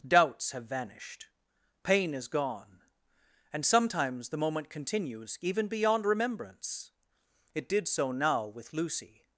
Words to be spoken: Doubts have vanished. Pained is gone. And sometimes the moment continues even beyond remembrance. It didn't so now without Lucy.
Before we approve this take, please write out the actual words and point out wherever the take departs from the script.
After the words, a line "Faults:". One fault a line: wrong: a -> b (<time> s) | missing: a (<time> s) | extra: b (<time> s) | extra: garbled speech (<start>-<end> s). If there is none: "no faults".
Doubts have vanished. Pain is gone. And sometimes the moment continues even beyond remembrance. It did so now with Lucy.
Faults:
wrong: Pained -> Pain (1.8 s)
wrong: didn't -> did (7.7 s)
wrong: without -> with (8.5 s)